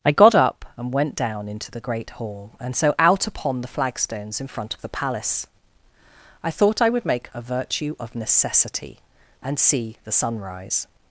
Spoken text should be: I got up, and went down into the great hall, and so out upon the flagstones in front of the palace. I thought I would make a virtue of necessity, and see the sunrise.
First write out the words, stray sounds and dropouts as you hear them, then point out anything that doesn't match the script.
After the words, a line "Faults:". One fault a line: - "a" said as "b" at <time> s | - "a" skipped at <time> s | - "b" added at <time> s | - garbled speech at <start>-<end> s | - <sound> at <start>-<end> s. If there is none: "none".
I got up, and went down into the great hall, and so out upon the flagstones in front of the palace. I thought I would make a virtue of necessity, and see the sunrise.
Faults:
none